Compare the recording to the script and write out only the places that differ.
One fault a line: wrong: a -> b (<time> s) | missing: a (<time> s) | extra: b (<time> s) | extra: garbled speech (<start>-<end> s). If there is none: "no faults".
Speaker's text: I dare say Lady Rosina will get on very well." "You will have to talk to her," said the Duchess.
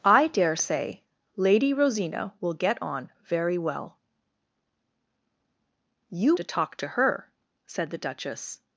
missing: will have (6.3 s)